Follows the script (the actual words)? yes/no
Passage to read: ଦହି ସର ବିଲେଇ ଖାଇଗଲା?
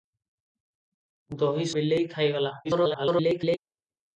no